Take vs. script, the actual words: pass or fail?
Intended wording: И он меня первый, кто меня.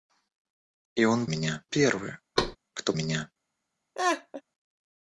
pass